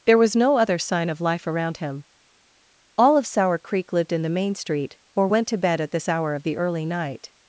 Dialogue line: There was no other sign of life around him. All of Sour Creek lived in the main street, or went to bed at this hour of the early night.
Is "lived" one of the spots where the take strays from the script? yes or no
no